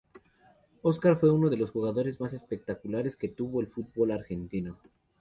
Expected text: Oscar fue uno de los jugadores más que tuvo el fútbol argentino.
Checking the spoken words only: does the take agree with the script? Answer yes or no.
no